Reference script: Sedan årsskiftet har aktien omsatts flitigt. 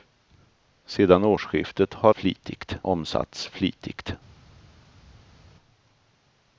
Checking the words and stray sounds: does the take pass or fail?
fail